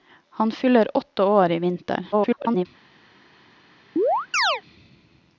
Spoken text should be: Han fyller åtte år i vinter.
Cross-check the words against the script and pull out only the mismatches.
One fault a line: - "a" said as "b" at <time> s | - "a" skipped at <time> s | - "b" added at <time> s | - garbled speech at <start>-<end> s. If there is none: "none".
- garbled speech at 2.1-2.7 s